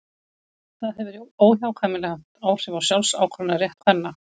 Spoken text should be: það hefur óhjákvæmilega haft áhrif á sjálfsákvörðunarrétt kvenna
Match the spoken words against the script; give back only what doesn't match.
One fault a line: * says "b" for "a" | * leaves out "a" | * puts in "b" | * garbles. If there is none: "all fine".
all fine